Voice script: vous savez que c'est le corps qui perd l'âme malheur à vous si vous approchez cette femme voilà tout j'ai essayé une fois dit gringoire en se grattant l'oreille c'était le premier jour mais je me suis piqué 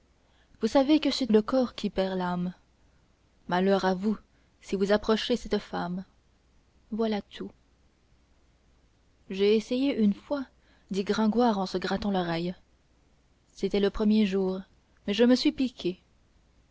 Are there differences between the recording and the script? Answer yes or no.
no